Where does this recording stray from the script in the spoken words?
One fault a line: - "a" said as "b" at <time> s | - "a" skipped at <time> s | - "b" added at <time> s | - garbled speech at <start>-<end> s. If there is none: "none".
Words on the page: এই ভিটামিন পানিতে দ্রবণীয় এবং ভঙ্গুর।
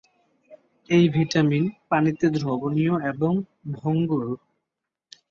none